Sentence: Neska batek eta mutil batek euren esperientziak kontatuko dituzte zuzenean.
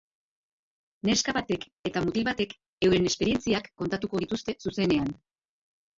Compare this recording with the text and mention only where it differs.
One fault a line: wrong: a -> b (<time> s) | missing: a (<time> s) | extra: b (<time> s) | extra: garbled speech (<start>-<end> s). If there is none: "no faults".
no faults